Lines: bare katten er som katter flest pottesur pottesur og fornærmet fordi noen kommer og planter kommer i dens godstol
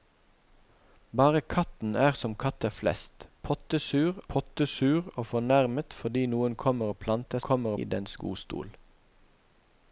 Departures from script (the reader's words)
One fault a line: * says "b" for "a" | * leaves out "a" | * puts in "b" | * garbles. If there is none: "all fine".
all fine